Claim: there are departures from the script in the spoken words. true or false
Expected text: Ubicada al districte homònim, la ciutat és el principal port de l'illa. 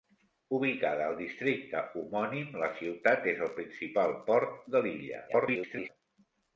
true